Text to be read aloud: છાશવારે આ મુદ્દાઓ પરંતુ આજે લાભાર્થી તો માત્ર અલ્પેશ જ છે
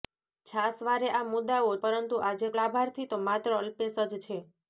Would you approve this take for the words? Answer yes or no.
yes